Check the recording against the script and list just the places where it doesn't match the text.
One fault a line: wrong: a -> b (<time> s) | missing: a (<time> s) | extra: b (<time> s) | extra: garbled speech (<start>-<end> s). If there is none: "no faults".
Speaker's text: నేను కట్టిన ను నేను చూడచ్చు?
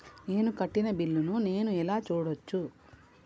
extra: బిల్లు (0.9 s)
extra: ఎలా (1.8 s)